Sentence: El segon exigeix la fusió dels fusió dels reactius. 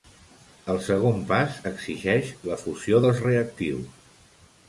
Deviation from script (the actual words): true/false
true